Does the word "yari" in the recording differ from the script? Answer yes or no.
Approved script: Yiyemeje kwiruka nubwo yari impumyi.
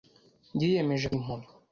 yes